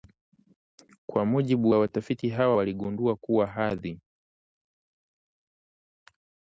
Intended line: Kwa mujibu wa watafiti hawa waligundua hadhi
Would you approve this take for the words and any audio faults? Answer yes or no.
no